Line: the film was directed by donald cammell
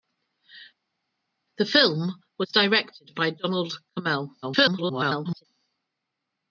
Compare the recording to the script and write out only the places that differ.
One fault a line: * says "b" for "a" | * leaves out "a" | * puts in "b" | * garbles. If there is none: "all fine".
* garbles